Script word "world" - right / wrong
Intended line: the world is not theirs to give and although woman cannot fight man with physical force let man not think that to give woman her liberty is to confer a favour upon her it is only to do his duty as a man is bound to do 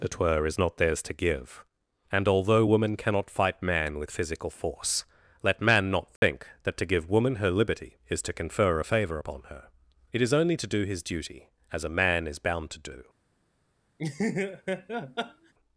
wrong